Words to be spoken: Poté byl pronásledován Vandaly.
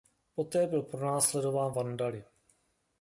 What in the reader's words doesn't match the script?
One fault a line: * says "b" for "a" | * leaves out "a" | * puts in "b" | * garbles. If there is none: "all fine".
all fine